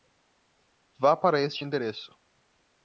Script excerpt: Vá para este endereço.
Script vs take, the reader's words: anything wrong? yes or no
no